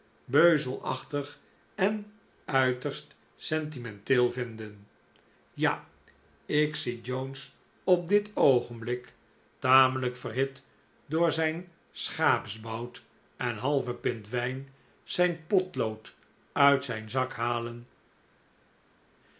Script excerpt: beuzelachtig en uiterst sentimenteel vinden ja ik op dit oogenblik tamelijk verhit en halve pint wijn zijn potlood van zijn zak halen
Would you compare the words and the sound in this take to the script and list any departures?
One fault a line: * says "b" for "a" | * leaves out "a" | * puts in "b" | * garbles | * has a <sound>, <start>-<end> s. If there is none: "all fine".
* puts in "zie jones"
* puts in "door zijn schaapsbout"
* says "uit" for "van"